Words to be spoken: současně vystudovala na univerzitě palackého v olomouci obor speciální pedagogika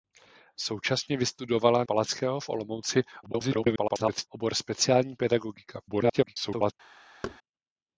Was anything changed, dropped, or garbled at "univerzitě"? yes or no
yes